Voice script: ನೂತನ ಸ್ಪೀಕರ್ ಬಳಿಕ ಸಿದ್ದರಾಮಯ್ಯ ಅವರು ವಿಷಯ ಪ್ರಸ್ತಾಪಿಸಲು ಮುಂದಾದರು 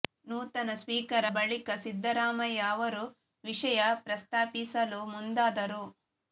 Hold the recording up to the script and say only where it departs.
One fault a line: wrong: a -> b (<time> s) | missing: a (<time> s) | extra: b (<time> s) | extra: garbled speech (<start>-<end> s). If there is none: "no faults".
no faults